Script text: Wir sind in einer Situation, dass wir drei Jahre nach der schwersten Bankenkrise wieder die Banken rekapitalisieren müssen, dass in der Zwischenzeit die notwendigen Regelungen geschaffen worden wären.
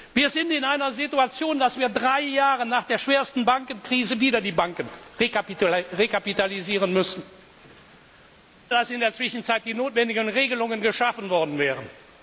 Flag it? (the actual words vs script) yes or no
no